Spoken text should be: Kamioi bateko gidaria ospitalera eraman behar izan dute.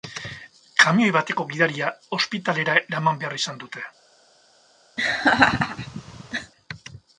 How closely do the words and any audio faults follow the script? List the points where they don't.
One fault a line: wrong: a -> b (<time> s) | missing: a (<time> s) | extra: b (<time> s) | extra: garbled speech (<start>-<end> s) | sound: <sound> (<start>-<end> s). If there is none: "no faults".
sound: laugh (5.0-6.5 s)